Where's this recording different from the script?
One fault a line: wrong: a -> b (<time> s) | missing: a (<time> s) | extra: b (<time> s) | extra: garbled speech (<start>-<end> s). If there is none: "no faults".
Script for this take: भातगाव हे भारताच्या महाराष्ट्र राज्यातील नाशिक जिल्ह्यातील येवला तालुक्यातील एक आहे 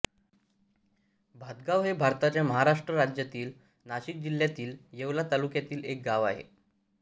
extra: गाव (6.1 s)